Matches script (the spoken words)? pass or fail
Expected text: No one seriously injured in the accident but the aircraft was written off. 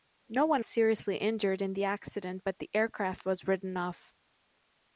pass